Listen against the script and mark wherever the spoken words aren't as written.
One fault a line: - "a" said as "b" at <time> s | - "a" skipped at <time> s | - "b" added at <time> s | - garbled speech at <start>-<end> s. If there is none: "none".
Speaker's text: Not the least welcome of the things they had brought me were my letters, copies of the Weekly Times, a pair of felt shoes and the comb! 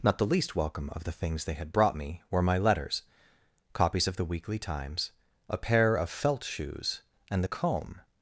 none